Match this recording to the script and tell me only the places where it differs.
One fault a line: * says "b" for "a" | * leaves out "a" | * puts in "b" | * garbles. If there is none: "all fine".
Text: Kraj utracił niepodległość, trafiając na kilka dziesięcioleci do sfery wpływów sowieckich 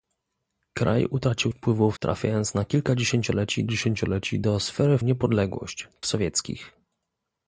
* says "wpływów" for "niepodległość"
* puts in "dziesięcioleci"
* says "niepodległość" for "wpływów"